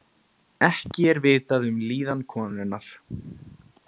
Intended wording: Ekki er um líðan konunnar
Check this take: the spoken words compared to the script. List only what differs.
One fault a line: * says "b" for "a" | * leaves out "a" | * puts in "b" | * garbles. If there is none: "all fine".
* puts in "vitað"